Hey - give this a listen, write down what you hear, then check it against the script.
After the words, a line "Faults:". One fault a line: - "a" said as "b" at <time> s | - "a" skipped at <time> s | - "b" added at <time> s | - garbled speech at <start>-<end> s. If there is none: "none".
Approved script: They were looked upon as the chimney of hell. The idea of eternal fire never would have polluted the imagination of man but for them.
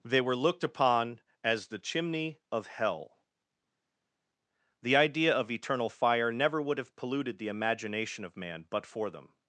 They were looked upon as the chimney of hell. The idea of eternal fire never would have polluted the imagination of man but for them.
Faults:
none